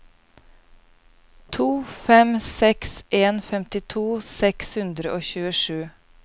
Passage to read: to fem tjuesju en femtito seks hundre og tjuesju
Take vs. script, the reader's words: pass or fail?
fail